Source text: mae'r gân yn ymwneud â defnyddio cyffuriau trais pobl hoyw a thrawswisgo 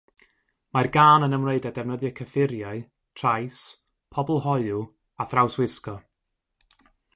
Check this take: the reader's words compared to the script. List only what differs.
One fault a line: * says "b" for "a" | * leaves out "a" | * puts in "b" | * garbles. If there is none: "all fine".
all fine